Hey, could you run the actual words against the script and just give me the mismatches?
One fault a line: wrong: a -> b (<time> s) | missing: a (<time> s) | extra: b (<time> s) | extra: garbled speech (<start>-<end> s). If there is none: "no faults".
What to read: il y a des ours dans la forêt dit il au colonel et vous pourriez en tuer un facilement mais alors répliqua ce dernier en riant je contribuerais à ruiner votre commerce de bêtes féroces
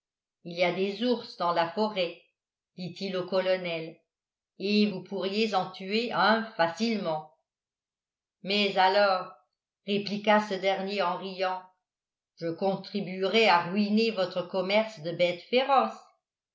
no faults